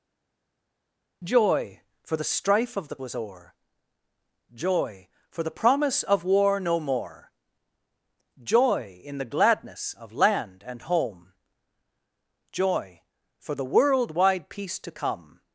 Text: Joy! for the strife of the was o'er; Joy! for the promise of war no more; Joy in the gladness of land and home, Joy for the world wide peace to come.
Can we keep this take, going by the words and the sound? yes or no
yes